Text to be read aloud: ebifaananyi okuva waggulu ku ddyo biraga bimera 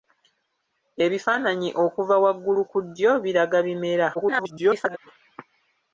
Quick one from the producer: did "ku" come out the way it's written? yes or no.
yes